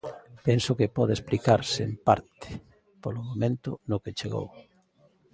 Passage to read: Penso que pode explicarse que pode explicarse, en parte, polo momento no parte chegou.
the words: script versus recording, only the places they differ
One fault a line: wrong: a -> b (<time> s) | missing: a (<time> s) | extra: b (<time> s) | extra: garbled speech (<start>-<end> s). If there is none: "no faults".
missing: que pode explicarse (1.8 s)
wrong: parte -> que (4.0 s)